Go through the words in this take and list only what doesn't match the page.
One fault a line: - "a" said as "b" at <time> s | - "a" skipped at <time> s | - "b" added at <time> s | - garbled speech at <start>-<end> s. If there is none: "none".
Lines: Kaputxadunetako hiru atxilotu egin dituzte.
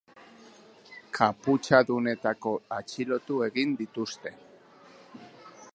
- "hiru" skipped at 2.5 s